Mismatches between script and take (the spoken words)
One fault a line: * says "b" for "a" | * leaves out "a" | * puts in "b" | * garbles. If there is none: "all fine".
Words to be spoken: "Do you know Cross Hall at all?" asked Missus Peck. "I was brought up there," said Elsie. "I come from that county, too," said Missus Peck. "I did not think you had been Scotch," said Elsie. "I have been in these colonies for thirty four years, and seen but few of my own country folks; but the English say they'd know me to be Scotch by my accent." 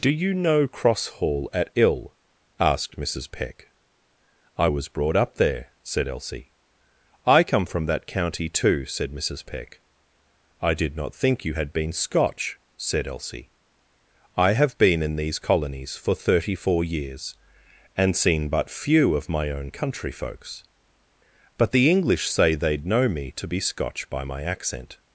* says "ill" for "all"